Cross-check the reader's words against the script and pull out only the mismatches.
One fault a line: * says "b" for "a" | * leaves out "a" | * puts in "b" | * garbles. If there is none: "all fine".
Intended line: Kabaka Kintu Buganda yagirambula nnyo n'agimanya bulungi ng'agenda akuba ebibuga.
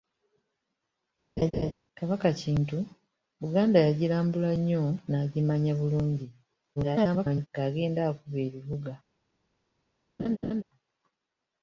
* garbles